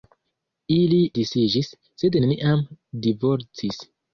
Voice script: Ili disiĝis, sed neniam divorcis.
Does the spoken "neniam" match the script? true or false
true